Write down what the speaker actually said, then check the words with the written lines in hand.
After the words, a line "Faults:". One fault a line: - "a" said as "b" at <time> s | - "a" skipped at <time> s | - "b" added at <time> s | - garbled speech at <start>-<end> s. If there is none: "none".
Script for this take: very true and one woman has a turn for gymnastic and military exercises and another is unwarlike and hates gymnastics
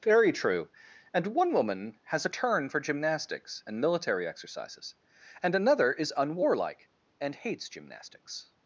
very true and one woman has a turn for gymnastics and military exercises and another is unwarlike and hates gymnastics
Faults:
- "gymnastic" said as "gymnastics" at 2.8 s